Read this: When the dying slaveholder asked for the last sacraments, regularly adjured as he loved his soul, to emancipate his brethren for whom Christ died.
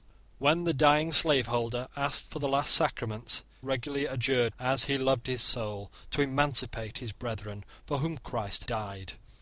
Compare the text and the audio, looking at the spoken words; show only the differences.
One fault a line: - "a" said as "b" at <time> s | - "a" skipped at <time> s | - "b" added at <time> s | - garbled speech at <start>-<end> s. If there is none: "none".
none